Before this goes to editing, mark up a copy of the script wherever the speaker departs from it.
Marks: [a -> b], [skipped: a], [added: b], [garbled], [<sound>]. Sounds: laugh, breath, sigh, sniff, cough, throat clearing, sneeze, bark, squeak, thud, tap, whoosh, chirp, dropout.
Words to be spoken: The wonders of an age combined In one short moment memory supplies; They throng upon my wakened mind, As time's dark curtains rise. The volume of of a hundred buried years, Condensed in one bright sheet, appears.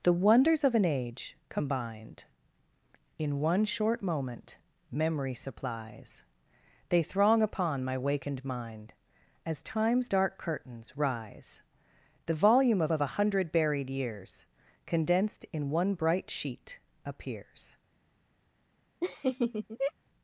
The wonders of an age combined In one short moment memory supplies; They throng upon my wakened mind, As time's dark curtains rise. The volume of of a hundred buried years, Condensed in one bright sheet, appears. [laugh]